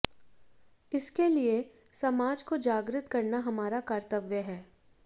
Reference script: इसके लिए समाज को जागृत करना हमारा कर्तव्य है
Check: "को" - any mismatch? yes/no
no